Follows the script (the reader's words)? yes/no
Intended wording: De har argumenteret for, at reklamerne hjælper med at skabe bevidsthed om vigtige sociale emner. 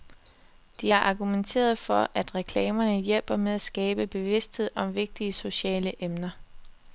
yes